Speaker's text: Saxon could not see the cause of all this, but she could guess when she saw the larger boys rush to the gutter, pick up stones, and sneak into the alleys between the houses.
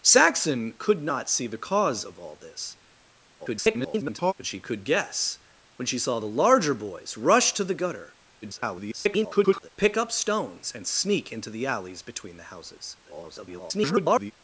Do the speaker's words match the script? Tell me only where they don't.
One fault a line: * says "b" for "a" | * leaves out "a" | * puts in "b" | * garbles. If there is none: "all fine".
* garbles
* garbles
* garbles